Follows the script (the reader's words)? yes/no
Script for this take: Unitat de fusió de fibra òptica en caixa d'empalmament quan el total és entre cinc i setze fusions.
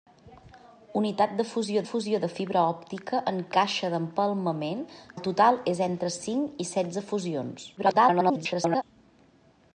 no